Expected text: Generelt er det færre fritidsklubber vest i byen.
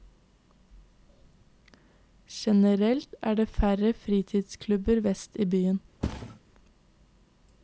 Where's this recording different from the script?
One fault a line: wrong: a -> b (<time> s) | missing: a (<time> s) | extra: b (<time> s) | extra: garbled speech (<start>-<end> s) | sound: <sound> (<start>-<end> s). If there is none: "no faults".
sound: thud (6.0-6.4 s)